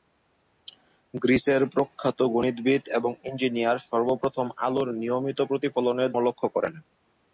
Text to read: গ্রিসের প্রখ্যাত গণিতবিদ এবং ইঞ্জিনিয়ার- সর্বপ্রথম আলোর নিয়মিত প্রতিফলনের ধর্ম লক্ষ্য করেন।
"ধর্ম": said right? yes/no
no